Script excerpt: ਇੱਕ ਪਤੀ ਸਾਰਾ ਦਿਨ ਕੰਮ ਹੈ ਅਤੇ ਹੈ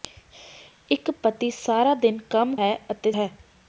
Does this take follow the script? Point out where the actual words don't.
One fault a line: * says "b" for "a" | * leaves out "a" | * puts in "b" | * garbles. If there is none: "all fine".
all fine